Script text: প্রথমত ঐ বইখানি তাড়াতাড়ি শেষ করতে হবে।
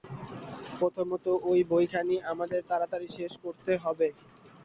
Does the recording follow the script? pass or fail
fail